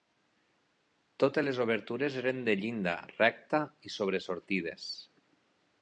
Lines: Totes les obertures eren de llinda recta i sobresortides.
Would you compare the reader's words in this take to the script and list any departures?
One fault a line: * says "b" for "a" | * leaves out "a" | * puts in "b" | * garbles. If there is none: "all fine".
all fine